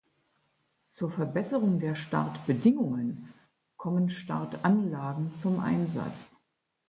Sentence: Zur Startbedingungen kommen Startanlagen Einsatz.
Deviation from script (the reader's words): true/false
true